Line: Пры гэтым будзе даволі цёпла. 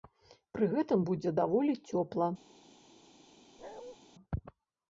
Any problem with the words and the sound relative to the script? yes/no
yes